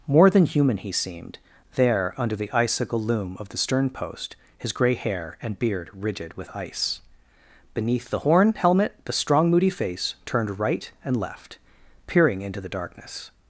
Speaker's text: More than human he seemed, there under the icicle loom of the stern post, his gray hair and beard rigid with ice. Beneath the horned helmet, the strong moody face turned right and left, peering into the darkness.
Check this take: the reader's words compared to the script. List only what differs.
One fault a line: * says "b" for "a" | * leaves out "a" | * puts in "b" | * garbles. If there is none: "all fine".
* says "horn" for "horned"